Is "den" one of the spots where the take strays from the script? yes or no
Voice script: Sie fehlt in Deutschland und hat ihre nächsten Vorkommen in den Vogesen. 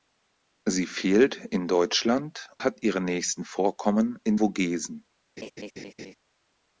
yes